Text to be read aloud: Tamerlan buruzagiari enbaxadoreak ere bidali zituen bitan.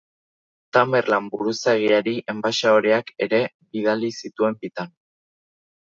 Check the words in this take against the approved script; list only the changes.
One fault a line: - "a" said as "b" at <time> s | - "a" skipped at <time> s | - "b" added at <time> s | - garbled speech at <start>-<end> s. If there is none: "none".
none